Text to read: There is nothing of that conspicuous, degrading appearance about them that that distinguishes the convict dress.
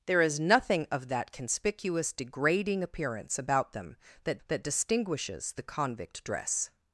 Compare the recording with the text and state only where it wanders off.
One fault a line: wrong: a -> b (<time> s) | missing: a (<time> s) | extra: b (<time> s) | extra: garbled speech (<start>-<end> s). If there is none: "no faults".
no faults